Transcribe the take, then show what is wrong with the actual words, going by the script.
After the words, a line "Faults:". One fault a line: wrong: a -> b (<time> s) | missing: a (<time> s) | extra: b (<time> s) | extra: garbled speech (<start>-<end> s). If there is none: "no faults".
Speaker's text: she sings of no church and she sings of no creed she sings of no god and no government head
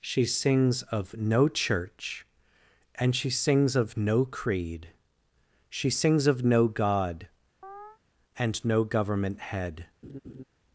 she sings of no church and she sings of no creed she sings of no god and no government head
Faults:
no faults